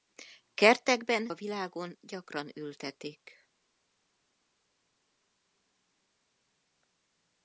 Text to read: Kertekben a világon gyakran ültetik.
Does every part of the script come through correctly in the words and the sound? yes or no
yes